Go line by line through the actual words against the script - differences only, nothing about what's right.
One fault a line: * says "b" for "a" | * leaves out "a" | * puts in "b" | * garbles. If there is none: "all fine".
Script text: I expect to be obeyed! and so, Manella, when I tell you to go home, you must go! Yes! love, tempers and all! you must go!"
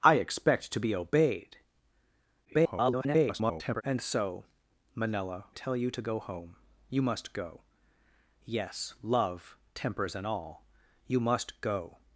* garbles
* leaves out "when I"